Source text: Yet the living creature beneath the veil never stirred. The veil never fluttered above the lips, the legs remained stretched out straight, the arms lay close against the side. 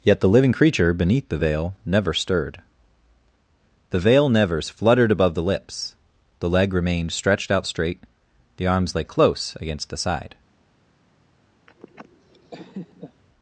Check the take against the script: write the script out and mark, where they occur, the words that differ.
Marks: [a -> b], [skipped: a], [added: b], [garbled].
Yet the living creature beneath the veil never stirred. The veil [never -> nevers] fluttered above the lips, the [legs -> leg] remained stretched out straight, the arms lay close against the side.